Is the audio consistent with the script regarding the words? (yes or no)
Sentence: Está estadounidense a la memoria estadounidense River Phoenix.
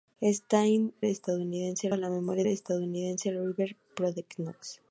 yes